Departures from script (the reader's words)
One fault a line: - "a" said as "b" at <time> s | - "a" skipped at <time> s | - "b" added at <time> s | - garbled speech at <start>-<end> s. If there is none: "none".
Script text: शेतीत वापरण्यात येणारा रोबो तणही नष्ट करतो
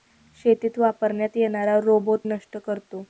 - "तणही" skipped at 2.2 s